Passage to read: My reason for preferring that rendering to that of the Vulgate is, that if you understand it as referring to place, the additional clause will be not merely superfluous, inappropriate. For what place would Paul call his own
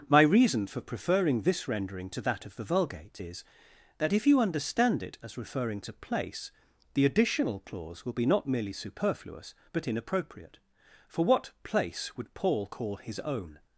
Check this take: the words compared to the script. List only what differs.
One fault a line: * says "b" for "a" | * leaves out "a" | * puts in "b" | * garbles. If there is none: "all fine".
* says "this" for "that"
* puts in "but"